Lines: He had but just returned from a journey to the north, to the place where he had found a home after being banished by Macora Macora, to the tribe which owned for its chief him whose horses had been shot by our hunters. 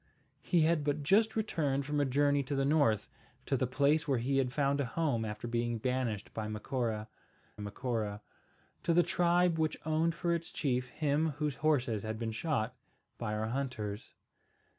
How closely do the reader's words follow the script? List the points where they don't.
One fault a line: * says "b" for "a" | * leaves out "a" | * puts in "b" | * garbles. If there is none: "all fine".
all fine